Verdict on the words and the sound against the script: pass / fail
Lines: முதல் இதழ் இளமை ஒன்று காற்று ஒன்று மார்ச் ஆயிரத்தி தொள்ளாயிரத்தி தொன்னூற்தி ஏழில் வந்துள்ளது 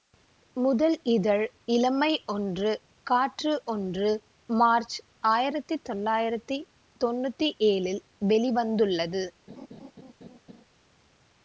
fail